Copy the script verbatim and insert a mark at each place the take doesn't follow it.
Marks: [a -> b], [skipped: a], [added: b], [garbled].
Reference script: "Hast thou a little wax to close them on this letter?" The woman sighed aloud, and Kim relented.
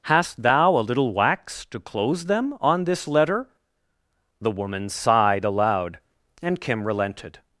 "Hast thou a little wax to close them on this letter?" The woman sighed aloud, and Kim relented.